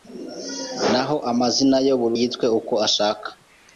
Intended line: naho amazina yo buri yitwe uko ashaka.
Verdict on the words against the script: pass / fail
pass